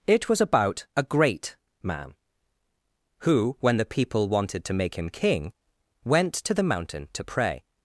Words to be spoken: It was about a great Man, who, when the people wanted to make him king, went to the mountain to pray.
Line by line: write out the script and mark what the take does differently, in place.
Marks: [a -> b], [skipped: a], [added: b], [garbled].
It was about a great Man, who, when the people wanted to make him king, went to the mountain to pray.